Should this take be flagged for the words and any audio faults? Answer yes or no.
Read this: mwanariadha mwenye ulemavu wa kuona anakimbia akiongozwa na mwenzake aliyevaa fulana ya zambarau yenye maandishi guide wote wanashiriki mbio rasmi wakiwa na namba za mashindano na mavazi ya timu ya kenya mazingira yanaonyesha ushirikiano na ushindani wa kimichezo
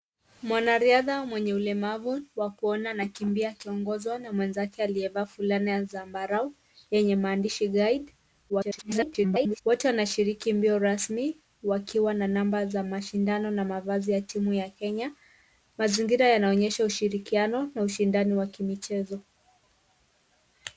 yes